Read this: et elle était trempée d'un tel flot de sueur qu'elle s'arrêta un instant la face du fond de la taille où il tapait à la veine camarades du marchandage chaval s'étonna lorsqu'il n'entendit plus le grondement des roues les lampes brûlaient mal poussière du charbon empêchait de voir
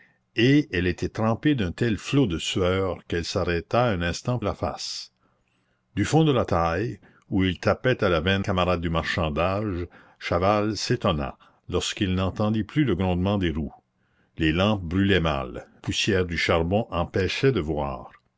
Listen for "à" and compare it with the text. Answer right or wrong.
right